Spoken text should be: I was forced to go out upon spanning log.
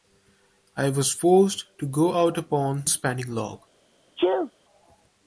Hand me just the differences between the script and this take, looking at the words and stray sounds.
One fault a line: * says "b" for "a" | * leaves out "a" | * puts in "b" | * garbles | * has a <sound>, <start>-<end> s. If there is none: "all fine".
* has a sneeze, 4.2-4.5 s